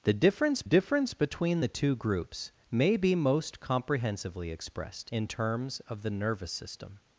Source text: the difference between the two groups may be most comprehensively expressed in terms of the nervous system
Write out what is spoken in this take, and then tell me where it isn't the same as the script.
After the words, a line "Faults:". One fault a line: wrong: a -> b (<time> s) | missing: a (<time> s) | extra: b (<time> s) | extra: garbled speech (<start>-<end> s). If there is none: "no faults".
the difference difference between the two groups may be most comprehensively expressed in terms of the nervous system
Faults:
extra: difference (0.6 s)